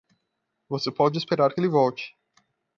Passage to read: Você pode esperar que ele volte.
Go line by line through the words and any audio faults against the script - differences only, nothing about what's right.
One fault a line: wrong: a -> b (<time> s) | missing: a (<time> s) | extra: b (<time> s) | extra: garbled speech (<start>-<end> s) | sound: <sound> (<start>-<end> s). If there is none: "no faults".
no faults